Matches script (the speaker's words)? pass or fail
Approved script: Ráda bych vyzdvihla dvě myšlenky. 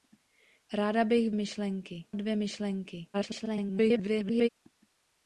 fail